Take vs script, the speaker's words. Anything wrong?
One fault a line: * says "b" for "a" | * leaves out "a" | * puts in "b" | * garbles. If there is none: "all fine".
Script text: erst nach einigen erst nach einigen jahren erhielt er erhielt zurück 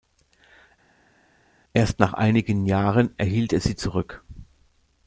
* leaves out "erst nach einigen"
* says "sie" for "erhielt"